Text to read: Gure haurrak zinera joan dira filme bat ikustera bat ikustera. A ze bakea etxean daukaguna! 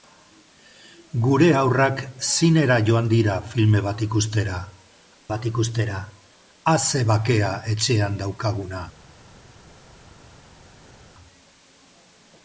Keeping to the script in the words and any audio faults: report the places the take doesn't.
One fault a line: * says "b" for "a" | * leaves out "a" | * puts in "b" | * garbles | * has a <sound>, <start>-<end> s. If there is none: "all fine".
all fine